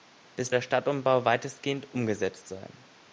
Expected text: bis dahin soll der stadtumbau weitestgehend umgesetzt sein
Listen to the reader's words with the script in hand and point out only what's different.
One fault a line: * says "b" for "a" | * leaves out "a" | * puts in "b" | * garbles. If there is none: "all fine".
* leaves out "dahin soll"